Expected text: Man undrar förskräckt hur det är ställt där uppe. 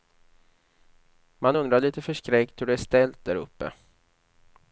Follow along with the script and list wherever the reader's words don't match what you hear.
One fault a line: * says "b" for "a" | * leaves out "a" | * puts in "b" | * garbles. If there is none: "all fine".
* puts in "lite"